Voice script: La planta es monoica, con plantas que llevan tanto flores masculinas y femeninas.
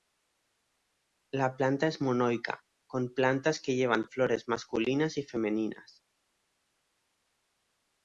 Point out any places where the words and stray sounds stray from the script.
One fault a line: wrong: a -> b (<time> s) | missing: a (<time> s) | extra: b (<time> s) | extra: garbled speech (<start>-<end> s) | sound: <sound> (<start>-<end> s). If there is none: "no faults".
missing: tanto (4.1 s)